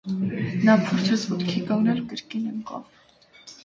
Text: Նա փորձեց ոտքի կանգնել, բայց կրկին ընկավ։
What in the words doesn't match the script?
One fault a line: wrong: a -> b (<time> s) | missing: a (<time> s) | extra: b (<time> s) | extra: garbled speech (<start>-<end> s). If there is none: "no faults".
missing: բայց (2.0 s)